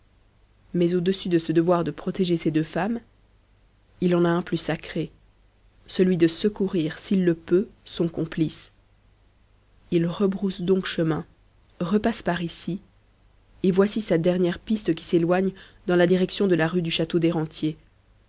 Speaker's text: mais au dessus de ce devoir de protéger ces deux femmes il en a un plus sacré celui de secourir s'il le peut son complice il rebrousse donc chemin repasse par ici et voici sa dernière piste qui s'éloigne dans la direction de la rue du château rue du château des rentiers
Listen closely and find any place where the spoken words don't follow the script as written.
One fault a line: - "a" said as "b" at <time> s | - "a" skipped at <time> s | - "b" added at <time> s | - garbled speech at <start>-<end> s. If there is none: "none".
- "rue du château" skipped at 17.2 s